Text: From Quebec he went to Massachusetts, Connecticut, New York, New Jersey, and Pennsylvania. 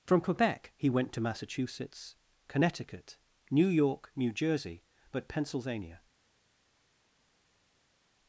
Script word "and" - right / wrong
wrong